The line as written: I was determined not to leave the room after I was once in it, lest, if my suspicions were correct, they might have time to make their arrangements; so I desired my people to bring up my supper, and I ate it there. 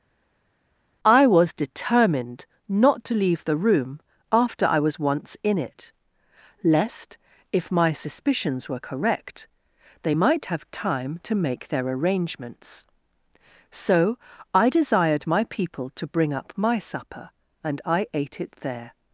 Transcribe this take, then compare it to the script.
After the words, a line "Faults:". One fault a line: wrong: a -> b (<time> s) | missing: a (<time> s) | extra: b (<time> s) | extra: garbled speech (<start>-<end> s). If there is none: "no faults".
I was determined not to leave the room after I was once in it, lest, if my suspicions were correct, they might have time to make their arrangements; so I desired my people to bring up my supper, and I ate it there.
Faults:
no faults